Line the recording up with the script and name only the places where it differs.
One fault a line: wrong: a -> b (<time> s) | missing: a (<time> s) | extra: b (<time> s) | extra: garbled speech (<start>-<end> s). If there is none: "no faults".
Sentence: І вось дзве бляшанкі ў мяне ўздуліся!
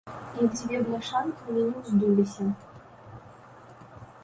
missing: вось (0.5 s)